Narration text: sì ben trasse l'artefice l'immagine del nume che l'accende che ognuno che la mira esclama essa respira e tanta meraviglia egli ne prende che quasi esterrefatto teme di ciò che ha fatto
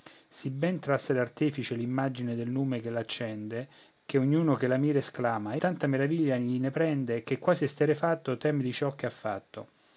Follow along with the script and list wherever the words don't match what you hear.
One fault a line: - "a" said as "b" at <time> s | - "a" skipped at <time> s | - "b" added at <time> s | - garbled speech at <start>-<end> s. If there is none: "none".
- "essa respira e" skipped at 5.6 s